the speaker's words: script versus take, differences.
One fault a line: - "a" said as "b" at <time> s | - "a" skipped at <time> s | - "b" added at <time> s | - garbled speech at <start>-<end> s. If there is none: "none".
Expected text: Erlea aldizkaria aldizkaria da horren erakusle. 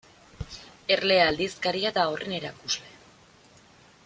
- "aldizkaria" skipped at 1.9 s